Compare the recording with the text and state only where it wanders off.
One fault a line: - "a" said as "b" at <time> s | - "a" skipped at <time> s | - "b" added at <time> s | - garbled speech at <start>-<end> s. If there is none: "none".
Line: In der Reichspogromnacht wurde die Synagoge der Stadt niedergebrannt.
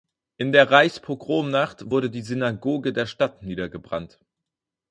none